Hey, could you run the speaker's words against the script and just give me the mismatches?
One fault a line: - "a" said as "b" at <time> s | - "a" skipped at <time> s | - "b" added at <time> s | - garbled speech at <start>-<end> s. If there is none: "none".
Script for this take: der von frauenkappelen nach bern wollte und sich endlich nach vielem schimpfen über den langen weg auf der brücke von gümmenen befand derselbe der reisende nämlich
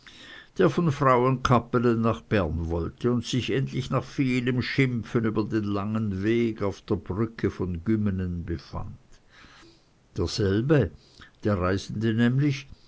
none